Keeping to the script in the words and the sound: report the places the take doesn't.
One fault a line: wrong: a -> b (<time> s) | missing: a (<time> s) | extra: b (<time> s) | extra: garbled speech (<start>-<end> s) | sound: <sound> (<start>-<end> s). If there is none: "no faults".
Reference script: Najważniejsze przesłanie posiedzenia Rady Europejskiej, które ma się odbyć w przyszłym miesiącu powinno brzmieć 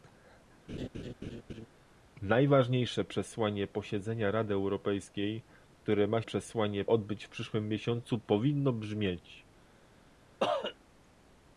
sound: laugh (0.7-1.7 s)
wrong: się -> przesłanie (6.2 s)
sound: cough (10.4-10.8 s)